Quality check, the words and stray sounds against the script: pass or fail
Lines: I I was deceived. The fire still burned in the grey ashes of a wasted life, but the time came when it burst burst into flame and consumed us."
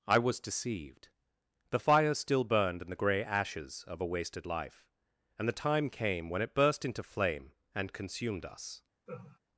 fail